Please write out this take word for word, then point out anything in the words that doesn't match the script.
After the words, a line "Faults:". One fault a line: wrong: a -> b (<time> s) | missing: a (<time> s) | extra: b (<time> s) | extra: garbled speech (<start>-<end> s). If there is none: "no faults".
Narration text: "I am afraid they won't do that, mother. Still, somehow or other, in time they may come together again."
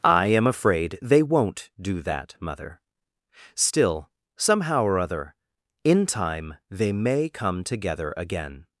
"I am afraid they won't do that, mother. Still, somehow or other, in time they may come together again."
Faults:
no faults